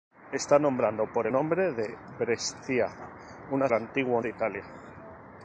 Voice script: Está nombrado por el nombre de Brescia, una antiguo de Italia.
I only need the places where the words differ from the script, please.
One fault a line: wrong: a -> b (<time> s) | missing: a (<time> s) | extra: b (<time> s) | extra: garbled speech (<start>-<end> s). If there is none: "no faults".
no faults